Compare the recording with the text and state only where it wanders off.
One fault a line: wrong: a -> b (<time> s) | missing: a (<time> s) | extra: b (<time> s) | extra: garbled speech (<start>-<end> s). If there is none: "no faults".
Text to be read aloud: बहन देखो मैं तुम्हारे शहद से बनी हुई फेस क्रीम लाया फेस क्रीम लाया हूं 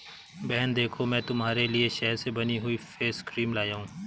extra: लिए (1.7 s)
missing: फेस क्रीम लाया (3.7 s)